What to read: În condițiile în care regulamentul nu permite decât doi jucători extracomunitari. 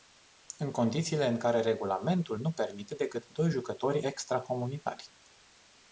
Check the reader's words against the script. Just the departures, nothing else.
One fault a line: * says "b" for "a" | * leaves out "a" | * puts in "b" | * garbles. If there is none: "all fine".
all fine